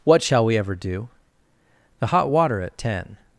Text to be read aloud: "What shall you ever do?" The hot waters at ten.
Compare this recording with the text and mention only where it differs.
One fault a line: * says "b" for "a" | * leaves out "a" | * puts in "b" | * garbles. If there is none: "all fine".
* says "we" for "you"
* says "water" for "waters"